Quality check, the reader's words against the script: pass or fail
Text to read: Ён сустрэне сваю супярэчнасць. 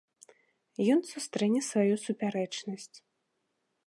pass